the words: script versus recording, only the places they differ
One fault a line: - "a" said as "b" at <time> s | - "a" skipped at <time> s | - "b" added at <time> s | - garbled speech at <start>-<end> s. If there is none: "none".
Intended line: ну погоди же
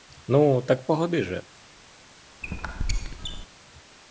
- "так" added at 0.6 s